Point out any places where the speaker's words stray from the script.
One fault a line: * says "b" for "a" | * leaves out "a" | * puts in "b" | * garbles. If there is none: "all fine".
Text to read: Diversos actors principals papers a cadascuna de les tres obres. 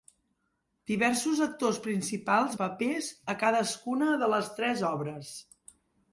all fine